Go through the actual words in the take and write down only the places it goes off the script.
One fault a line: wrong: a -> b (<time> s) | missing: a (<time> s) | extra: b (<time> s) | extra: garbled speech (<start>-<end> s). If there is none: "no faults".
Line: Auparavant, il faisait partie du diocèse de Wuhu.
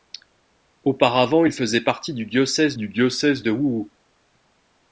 extra: du diocèse (2.8 s)